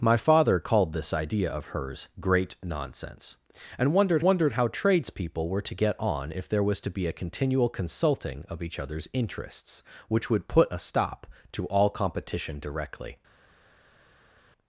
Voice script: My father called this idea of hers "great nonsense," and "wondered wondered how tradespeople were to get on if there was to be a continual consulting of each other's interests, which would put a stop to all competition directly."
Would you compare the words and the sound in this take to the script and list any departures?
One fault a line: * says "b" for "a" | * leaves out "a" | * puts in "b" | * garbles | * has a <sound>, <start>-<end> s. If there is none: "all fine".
all fine